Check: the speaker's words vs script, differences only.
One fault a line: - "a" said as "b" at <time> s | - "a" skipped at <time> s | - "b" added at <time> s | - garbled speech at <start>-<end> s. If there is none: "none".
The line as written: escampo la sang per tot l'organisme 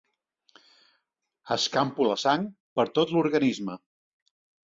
none